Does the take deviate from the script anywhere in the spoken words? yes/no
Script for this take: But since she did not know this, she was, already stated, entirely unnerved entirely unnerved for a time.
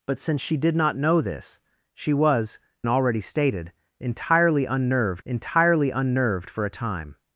no